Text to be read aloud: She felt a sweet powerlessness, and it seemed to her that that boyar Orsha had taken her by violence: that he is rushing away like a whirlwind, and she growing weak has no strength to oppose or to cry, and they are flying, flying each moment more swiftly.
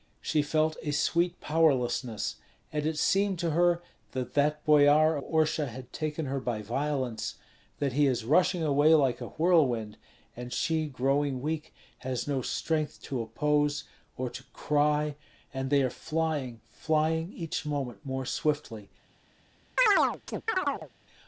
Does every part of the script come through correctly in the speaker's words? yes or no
yes